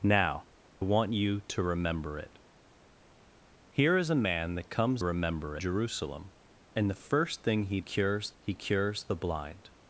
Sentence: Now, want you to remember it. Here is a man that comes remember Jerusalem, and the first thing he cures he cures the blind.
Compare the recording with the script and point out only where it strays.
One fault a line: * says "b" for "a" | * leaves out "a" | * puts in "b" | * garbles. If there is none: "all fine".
all fine